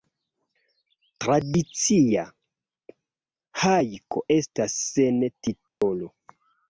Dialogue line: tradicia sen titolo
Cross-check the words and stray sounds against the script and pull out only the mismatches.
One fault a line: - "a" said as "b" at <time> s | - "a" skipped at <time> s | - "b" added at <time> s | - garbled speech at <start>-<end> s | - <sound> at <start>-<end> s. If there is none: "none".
- "hajko estas" added at 3.6 s
- dropout at 5.7-5.8 s